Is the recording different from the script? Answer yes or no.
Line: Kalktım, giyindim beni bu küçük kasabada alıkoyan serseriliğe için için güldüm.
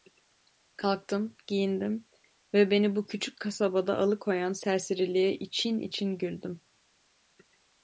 yes